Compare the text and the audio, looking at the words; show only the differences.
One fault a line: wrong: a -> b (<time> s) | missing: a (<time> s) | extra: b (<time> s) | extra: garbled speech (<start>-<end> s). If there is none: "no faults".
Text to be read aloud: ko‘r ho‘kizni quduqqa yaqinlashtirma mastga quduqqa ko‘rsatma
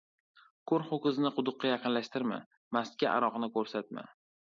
wrong: quduqqa -> aroqni (3.2 s)